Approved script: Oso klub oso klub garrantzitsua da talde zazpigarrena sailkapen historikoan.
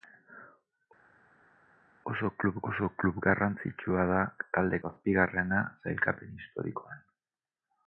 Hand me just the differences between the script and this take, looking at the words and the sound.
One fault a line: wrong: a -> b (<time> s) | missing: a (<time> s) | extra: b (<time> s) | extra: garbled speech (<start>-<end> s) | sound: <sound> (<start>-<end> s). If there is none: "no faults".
no faults